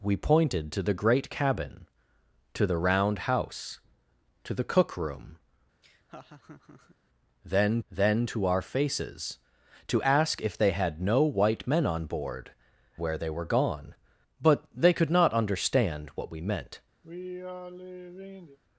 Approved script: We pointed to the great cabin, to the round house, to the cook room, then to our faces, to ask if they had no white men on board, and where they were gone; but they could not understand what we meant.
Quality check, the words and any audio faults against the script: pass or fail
fail